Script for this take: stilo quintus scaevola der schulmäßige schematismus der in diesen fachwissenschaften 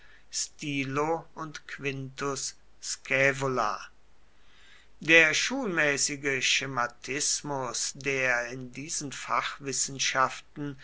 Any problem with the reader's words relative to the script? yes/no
yes